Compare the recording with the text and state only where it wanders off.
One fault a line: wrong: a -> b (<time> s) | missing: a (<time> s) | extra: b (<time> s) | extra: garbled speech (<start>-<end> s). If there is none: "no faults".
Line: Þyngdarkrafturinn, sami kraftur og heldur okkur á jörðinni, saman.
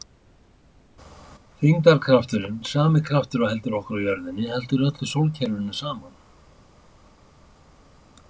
extra: heldur öllu sólkerfinu (4.5 s)